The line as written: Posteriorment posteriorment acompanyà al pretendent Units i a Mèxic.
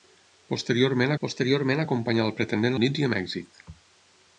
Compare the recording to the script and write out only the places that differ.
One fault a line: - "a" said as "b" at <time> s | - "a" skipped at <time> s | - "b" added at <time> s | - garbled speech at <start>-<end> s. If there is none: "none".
none